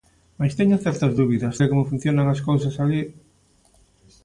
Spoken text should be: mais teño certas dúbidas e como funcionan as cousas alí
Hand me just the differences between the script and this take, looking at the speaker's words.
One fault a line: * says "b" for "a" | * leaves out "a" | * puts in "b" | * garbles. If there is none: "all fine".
all fine